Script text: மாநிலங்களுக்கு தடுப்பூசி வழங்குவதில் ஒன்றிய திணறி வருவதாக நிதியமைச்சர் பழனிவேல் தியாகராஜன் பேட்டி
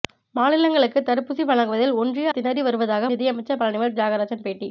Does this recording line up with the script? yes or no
yes